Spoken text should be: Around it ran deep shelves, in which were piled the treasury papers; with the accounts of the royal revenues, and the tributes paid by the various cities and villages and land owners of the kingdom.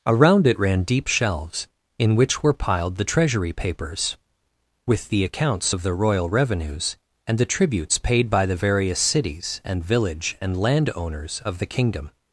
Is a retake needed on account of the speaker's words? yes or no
yes